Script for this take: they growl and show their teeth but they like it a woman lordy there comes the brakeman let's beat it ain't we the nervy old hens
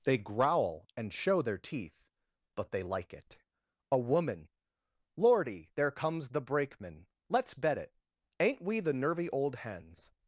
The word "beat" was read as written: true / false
false